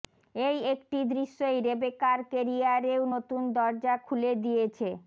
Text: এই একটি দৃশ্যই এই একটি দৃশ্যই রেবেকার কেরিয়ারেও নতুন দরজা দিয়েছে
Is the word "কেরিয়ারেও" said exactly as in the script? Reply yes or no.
yes